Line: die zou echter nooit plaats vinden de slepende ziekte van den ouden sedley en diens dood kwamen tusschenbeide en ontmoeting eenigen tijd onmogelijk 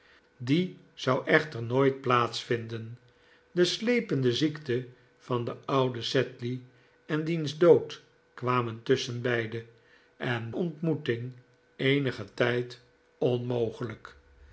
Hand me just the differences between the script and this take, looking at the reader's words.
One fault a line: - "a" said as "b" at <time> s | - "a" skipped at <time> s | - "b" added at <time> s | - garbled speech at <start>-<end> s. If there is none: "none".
none